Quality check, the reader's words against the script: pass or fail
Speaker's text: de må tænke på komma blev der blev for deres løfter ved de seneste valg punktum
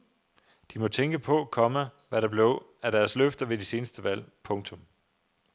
fail